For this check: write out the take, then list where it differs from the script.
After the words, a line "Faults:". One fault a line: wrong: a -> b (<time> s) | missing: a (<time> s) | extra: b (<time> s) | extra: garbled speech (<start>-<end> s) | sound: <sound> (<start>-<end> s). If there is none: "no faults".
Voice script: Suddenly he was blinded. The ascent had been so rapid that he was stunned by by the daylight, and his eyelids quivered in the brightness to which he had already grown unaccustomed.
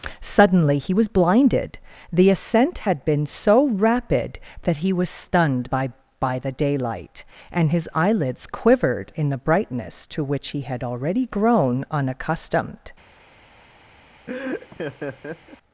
Suddenly he was blinded. The ascent had been so rapid that he was stunned by by the daylight, and his eyelids quivered in the brightness to which he had already grown unaccustomed.
Faults:
sound: laugh (14.3-15.6 s)